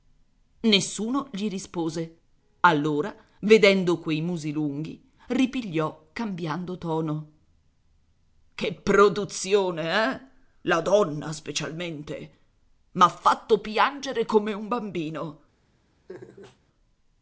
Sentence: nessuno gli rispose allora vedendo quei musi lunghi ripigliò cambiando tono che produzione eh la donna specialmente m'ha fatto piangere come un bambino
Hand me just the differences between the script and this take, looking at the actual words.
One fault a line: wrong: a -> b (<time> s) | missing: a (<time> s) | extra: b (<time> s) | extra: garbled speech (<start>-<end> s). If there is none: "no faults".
no faults